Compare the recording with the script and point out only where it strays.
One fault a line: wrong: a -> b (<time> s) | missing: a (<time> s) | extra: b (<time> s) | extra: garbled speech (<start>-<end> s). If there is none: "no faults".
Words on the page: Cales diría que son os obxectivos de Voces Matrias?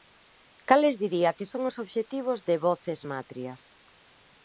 no faults